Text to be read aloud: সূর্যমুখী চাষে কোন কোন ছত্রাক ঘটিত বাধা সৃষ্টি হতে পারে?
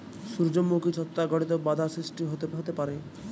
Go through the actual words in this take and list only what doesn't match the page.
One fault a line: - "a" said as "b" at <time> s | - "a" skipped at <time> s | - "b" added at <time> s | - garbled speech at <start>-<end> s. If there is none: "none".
- "চাষে কোন কোন" skipped at 0.9 s
- "হতে" added at 2.5 s